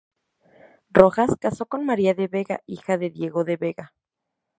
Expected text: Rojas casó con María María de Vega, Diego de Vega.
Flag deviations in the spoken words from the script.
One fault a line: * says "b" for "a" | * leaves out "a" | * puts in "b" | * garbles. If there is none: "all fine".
* leaves out "María"
* puts in "hija de"